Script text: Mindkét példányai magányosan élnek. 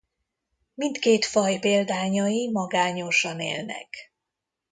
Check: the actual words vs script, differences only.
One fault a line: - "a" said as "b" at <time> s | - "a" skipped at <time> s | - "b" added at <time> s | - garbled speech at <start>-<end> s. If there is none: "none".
- "faj" added at 1.2 s